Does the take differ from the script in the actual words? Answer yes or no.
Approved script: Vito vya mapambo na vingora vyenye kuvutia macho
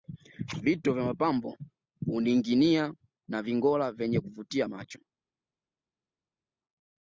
yes